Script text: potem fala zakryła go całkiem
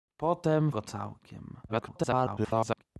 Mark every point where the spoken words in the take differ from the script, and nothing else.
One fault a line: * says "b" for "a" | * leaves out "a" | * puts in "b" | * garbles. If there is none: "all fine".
* leaves out "fala zakryła"
* garbles